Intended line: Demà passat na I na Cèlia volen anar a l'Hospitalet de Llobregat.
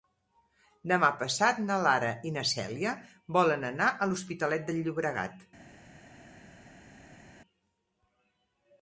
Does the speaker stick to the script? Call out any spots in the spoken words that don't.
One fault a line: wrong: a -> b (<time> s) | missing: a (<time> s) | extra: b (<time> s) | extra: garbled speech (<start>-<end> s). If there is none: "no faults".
extra: Lara (1.9 s)